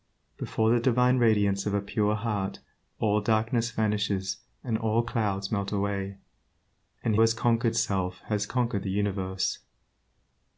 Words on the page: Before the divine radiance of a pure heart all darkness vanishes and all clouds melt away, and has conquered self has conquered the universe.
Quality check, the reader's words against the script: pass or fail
pass